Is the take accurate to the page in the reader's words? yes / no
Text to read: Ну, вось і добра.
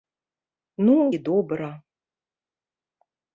no